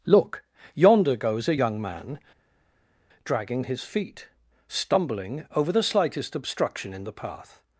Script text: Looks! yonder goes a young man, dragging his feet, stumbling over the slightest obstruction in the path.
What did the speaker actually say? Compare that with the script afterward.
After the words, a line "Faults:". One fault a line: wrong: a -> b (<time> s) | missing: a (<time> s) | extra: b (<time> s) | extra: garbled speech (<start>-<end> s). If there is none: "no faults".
Look! yonder goes a young man, dragging his feet, stumbling over the slightest obstruction in the path.
Faults:
wrong: Looks -> Look (0.1 s)